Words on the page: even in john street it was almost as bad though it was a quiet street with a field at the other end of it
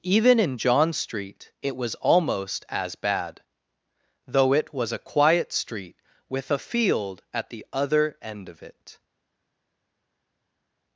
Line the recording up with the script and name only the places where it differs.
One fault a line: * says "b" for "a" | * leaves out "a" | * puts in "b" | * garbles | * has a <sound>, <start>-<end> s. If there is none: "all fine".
all fine